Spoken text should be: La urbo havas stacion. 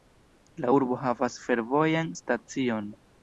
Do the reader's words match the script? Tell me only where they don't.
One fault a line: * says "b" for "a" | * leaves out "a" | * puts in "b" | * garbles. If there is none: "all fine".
* puts in "fervojan"